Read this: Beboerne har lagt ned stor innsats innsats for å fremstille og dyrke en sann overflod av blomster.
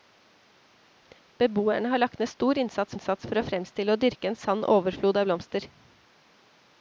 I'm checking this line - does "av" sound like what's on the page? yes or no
yes